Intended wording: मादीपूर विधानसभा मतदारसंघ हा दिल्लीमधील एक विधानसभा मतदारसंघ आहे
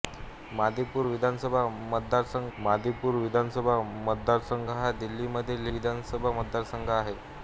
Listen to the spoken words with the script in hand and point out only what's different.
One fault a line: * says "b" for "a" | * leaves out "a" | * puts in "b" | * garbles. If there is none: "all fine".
* puts in "मादीपूर विधानसभा मतदारसंघ"
* leaves out "एक"